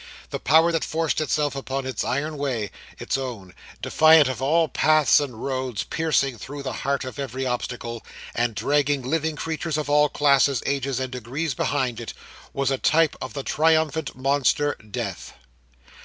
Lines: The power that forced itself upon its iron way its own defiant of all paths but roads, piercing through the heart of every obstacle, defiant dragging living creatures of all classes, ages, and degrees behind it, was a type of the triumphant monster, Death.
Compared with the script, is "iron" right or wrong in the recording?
right